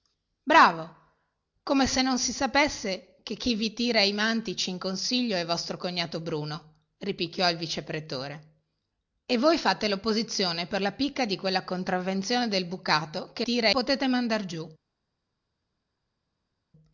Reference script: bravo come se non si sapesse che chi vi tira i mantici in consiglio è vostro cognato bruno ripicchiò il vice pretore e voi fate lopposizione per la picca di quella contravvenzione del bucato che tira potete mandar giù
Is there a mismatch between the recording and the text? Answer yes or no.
no